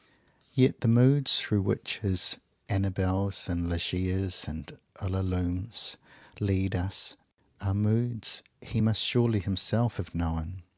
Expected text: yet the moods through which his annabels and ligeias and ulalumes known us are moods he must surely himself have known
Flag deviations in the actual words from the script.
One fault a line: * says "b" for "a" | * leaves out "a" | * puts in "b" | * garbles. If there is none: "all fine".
* says "lead" for "known"